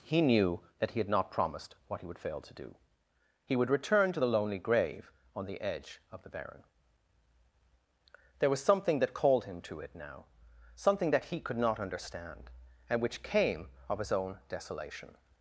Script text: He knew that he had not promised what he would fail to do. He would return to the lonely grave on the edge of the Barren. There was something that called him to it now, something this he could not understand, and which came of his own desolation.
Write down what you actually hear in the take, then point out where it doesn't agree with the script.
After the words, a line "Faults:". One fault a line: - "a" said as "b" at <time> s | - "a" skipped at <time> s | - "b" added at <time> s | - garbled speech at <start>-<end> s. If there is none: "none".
He knew that he had not promised what he would fail to do. He would return to the lonely grave on the edge of the Barren. There was something that called him to it now, something that he could not understand, and which came of his own desolation.
Faults:
- "this" said as "that" at 11.1 s